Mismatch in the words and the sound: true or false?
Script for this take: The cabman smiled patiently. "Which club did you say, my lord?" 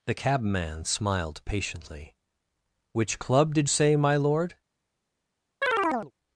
true